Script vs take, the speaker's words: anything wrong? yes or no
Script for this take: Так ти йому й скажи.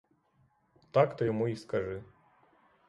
no